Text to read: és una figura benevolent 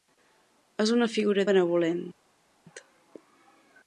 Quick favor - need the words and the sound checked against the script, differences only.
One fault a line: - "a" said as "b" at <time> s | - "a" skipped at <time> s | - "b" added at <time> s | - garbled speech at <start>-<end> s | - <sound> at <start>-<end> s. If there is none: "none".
none